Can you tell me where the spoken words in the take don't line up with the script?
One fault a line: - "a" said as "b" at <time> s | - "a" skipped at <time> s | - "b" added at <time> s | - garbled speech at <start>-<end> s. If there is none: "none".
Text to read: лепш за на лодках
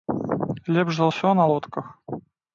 - "ўсё" added at 1.1 s